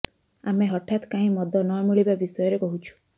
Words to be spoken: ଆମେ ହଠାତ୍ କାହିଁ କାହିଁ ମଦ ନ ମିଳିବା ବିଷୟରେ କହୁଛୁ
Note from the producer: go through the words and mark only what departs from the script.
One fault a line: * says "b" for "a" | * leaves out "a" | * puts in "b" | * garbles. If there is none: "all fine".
* leaves out "କାହିଁ"